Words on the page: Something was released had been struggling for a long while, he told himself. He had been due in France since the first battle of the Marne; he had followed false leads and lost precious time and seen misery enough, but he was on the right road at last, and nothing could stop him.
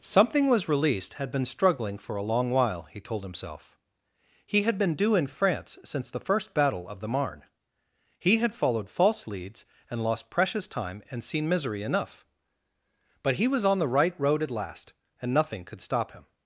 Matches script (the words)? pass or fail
pass